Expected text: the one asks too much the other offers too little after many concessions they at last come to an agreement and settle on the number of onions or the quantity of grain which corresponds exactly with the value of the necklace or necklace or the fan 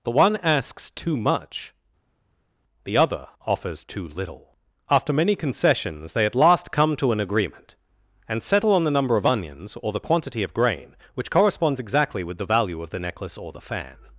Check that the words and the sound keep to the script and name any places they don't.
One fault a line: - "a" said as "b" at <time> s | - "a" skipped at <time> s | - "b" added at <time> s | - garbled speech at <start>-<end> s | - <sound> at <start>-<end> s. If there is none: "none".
- "necklace or" skipped at 13.5 s